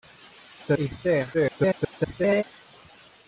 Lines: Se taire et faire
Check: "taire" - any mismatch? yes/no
yes